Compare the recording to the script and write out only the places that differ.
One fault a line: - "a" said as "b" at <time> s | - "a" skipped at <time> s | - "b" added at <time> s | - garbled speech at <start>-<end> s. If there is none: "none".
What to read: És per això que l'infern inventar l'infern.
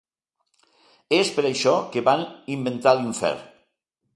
- "l'infern" said as "van" at 2.1 s